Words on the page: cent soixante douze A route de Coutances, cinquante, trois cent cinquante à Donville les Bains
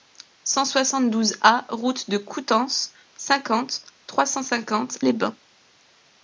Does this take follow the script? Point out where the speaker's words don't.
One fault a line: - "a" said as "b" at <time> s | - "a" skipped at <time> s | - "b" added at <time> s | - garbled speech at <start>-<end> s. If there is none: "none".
- "à Donville" skipped at 5.0 s